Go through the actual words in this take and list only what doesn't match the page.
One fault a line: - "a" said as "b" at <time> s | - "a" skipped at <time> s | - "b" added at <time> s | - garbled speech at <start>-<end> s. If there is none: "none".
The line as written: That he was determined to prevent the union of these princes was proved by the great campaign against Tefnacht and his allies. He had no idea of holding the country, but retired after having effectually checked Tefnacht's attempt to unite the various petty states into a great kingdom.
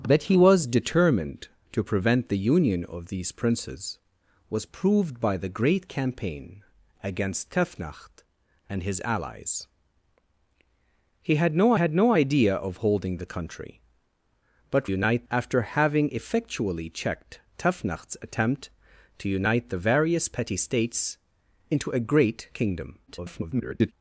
- "had no" added at 11.7 s
- "retired" said as "unite" at 14.9 s
- garbled speech at 23.1-23.9 s